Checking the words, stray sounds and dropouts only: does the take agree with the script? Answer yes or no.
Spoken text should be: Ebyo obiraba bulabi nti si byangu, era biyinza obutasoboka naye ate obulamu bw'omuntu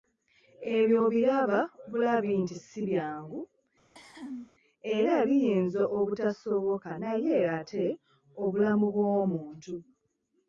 no